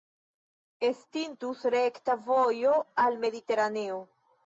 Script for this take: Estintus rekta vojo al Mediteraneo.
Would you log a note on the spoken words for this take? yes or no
no